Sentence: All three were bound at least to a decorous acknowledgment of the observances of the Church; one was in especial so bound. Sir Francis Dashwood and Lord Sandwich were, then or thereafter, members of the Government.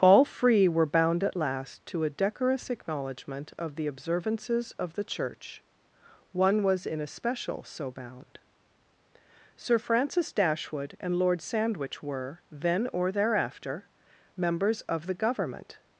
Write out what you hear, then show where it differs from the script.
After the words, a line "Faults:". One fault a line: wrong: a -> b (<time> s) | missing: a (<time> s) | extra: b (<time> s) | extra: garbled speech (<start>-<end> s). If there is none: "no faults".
All free were bound at last to a decorous acknowledgment of the observances of the Church; one was in especial so bound. Sir Francis Dashwood and Lord Sandwich were, then or thereafter, members of the Government.
Faults:
wrong: three -> free (0.2 s)
wrong: least -> last (1.4 s)